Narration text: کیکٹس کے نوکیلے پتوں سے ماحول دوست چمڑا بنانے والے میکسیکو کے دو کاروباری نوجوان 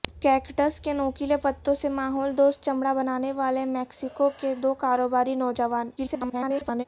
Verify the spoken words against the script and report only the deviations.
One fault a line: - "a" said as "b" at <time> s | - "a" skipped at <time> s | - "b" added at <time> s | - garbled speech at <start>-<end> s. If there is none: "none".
- garbled speech at 6.0-6.8 s